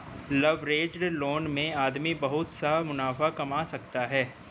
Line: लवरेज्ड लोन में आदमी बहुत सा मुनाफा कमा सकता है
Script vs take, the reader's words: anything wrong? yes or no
no